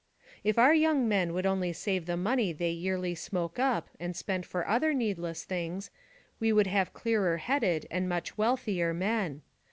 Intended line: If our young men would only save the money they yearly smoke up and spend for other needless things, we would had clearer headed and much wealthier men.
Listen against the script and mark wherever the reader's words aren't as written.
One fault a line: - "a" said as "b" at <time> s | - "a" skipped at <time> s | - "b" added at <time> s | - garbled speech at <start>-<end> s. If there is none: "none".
- "had" said as "have" at 6.7 s